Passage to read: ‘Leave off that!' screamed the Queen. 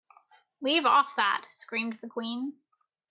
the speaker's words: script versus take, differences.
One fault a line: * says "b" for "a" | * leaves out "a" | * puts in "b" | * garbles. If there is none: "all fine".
all fine